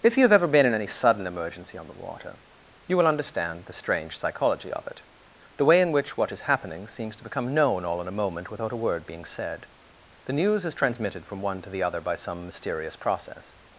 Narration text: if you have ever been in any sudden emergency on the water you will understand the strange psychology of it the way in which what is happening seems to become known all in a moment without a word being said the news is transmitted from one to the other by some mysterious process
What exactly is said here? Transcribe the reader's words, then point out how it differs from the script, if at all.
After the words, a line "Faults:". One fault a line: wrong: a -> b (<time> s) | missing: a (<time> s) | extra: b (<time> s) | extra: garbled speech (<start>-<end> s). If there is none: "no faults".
if you have ever been in any sudden emergency on the water you will understand the strange psychology of it the way in which what is happening seems to become known all in a moment without a word being said the news is transmitted from one to the other by some mysterious process
Faults:
no faults